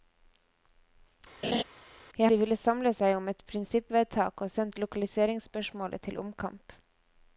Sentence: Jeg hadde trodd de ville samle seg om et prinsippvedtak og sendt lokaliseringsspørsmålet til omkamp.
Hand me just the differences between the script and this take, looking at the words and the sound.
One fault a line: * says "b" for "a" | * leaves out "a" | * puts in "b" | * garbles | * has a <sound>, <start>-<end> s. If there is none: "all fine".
* has a laugh, 1.4-1.6 s
* leaves out "hadde trodd"